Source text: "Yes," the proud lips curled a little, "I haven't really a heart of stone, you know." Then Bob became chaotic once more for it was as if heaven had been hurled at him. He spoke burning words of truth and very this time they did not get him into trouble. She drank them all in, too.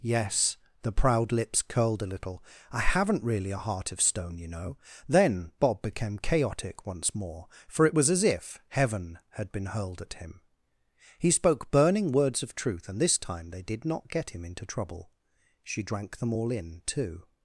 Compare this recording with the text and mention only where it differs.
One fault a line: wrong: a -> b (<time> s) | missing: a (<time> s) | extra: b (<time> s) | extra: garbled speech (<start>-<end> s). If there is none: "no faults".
missing: very (13.0 s)